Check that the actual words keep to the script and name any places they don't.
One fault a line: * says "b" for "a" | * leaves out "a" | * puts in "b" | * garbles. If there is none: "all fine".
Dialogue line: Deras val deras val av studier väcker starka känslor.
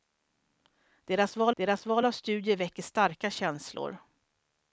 all fine